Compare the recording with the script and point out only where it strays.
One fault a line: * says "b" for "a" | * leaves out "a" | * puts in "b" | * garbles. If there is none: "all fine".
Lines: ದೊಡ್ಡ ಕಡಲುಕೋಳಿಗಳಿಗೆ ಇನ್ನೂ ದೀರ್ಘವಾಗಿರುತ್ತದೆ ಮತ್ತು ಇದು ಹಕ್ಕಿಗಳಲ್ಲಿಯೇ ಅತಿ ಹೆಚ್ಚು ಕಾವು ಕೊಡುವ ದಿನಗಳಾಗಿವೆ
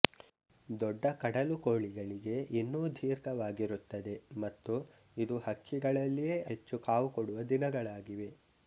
* leaves out "ಅತಿ"